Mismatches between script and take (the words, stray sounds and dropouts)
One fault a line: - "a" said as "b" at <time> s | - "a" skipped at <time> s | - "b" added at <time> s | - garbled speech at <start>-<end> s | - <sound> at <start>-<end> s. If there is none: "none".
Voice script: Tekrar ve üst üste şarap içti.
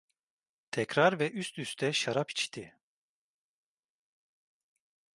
none